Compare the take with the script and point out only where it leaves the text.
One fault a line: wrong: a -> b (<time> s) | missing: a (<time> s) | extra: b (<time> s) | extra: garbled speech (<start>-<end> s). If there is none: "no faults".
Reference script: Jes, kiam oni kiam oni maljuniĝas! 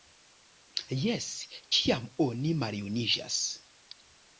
missing: kiam oni (2.6 s)